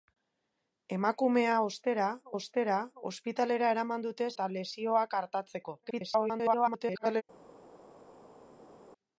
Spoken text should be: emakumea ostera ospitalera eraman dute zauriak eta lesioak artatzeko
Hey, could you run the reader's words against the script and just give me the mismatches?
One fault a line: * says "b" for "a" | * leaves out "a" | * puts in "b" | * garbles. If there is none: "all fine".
* puts in "ostera"
* leaves out "zauriak"
* garbles